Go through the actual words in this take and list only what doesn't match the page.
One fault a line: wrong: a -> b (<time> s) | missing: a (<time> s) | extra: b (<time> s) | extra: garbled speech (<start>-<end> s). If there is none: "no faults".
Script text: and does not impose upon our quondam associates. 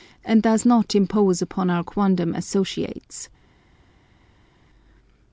no faults